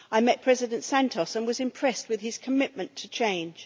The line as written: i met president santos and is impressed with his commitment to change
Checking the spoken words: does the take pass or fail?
fail